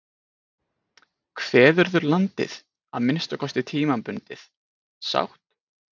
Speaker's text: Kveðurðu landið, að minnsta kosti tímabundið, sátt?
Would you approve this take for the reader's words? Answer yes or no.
yes